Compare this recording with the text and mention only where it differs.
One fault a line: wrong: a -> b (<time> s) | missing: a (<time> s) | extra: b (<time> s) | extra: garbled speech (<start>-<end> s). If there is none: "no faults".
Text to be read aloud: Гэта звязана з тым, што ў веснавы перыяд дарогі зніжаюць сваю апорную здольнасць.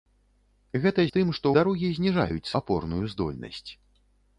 missing: звязана (1.0 s)
missing: ў веснавы перыяд (1.5 s)
missing: сваю (2.5 s)